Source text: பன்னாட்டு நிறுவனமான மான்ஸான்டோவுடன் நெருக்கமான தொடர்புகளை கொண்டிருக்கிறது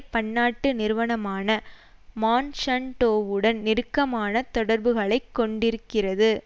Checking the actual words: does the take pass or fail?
pass